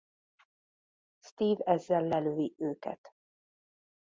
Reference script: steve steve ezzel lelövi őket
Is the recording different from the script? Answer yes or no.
yes